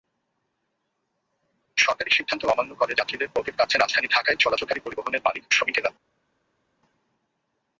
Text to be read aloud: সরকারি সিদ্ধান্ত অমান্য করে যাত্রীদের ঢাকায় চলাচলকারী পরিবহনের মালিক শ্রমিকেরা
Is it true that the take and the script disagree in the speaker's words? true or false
true